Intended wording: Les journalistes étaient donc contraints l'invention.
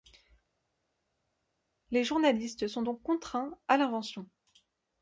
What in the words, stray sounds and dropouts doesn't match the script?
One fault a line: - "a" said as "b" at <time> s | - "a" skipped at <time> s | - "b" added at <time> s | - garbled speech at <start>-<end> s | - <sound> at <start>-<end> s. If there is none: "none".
- "étaient" said as "sont" at 2.7 s
- "à" added at 3.7 s